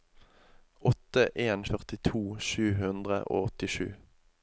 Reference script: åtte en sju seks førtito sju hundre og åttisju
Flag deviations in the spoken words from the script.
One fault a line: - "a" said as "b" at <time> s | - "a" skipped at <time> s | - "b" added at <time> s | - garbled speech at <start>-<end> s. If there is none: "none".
- "sju seks" skipped at 1.6 s